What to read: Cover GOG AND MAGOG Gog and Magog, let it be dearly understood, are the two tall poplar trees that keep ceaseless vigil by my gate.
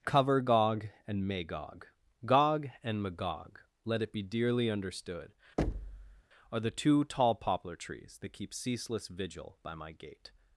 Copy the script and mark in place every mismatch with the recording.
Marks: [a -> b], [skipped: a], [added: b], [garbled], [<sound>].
Cover GOG AND MAGOG Gog and Magog, let it be dearly understood, [thud] are the two tall poplar trees that keep ceaseless vigil by my gate.